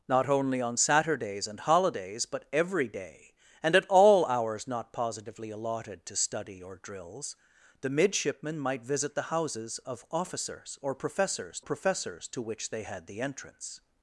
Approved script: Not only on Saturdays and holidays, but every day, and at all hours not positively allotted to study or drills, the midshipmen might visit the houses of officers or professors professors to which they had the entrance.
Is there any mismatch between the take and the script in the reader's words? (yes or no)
no